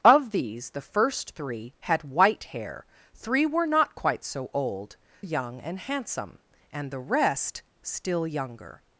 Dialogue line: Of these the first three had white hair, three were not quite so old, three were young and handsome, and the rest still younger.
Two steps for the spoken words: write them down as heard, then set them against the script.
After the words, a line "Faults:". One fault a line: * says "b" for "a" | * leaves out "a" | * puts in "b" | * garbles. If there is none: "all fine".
Of these the first three had white hair, three were not quite so old, young and handsome, and the rest still younger.
Faults:
* leaves out "three were"